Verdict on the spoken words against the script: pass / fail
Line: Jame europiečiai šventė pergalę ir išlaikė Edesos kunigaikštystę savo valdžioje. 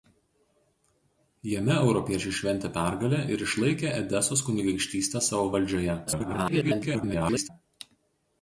fail